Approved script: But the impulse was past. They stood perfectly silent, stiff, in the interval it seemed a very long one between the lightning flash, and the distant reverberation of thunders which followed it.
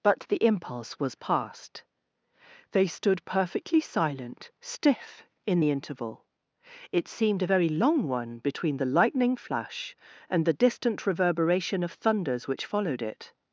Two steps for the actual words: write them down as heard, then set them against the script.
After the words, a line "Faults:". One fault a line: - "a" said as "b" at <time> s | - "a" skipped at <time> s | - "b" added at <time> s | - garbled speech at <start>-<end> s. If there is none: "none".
But the impulse was past. They stood perfectly silent, stiff, in the interval it seemed a very long one between the lightning flash, and the distant reverberation of thunders which followed it.
Faults:
none